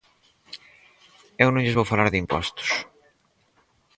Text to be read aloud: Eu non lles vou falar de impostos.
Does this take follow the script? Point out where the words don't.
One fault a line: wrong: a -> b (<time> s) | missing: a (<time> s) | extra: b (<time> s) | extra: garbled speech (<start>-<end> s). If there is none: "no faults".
no faults